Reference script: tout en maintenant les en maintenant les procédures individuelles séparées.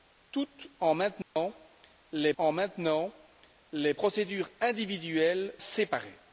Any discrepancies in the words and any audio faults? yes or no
yes